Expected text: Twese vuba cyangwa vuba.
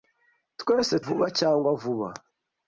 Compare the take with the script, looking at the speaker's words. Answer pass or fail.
pass